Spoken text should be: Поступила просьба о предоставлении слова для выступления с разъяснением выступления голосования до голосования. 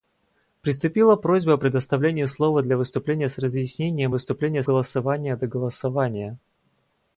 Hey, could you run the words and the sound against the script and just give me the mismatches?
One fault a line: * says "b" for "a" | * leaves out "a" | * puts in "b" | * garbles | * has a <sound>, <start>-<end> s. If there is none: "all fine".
all fine